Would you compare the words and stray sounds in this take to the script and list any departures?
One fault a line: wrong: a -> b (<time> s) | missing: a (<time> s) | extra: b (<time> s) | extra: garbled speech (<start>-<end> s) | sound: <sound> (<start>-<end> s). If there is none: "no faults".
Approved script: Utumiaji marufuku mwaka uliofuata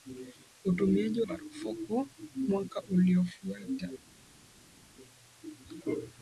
no faults